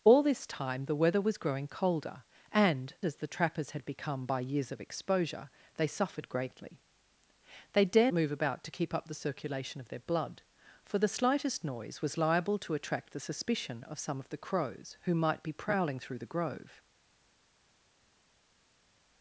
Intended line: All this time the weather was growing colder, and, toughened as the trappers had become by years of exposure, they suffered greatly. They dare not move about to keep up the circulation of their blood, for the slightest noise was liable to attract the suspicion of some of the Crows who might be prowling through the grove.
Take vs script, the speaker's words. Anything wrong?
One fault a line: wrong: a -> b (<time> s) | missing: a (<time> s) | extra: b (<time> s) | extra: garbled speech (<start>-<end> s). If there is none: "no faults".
missing: toughened (3.0 s)
missing: not (8.1 s)